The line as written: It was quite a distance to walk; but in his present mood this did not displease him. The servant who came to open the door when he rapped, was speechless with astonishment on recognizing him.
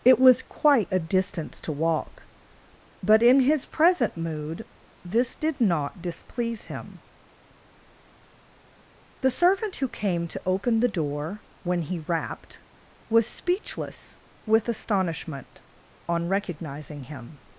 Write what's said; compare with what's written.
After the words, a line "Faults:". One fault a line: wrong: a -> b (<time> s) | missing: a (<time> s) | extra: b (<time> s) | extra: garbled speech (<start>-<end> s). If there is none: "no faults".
It was quite a distance to walk; but in his present mood this did not displease him. The servant who came to open the door when he rapped, was speechless with astonishment on recognizing him.
Faults:
no faults